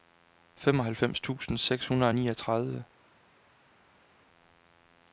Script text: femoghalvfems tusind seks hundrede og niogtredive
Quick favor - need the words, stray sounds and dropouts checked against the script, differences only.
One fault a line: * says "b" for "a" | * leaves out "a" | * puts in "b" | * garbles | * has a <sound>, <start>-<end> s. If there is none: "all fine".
all fine